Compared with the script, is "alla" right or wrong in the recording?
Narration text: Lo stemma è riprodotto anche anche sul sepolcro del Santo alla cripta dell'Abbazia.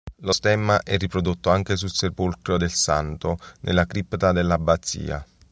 wrong